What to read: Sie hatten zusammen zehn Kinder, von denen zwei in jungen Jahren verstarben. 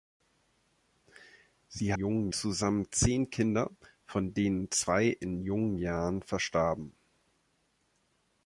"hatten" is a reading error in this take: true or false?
true